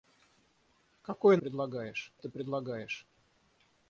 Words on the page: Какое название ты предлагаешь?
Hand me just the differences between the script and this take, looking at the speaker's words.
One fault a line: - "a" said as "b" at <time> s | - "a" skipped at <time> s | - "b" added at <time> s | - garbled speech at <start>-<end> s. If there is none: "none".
- "название" said as "предлагаешь" at 1.4 s